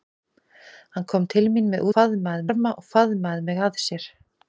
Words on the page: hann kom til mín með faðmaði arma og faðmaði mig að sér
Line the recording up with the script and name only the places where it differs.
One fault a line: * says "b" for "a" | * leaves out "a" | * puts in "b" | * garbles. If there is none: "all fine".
all fine